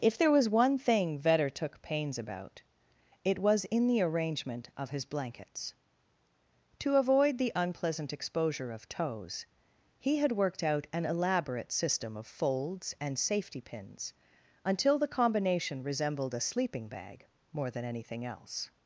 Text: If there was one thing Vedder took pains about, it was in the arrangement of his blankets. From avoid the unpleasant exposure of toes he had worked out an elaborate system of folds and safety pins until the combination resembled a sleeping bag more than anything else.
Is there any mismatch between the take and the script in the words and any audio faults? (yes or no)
yes